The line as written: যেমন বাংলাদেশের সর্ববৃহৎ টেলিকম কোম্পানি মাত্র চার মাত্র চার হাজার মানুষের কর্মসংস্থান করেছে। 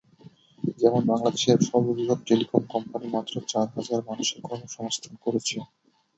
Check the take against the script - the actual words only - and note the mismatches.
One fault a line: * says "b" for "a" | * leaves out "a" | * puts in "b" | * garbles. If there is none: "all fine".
* leaves out "মাত্র চার"